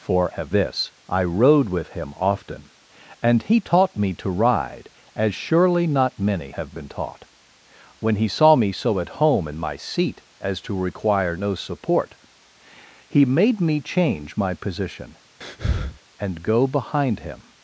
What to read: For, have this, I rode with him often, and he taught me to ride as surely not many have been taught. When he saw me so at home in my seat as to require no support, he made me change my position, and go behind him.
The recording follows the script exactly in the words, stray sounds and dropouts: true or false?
false